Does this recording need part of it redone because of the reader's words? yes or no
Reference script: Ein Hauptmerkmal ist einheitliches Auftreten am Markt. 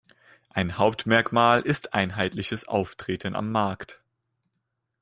no